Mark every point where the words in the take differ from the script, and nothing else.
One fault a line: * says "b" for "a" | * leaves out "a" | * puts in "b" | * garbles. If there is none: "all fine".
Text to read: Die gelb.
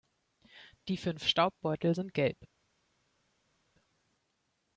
* puts in "fünf Staubbeutel sind"